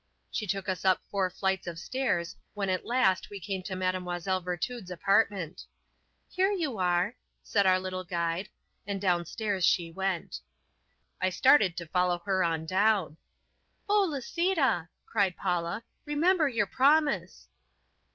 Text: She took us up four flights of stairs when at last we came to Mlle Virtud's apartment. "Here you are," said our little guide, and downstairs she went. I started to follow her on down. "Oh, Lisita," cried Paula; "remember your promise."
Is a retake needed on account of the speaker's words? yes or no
no